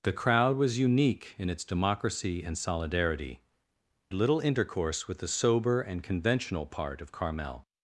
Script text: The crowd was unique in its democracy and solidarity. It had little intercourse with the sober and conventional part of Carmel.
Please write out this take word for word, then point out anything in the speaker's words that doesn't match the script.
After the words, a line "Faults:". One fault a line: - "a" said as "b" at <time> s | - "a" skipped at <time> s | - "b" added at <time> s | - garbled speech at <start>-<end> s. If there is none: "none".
The crowd was unique in its democracy and solidarity. Little intercourse with the sober and conventional part of Carmel.
Faults:
- "It had" skipped at 3.4 s